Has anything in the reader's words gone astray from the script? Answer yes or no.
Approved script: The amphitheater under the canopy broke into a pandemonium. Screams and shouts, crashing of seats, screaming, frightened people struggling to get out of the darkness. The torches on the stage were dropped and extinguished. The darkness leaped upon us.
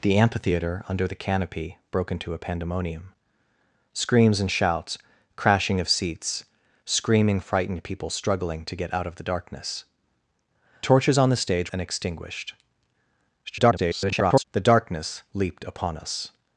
yes